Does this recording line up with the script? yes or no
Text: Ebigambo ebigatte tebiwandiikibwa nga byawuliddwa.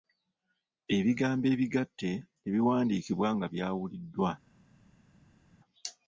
yes